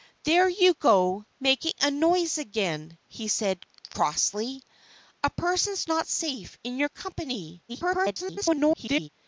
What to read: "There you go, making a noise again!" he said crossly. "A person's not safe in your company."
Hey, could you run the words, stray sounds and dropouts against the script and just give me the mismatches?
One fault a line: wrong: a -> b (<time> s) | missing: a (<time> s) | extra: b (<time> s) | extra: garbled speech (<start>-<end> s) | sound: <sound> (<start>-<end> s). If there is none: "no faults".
extra: garbled speech (7.7-9.1 s)